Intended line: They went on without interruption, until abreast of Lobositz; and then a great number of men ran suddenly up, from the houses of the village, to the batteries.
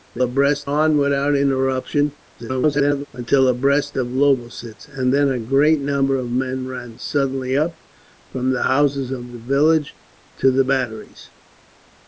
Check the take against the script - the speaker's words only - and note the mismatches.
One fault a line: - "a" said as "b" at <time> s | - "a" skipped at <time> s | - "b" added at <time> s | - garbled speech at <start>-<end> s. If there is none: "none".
- "went" said as "abreast" at 0.2 s
- garbled speech at 2.4-3.1 s